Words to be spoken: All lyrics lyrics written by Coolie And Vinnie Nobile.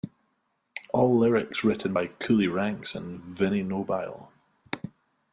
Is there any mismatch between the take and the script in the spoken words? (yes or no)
yes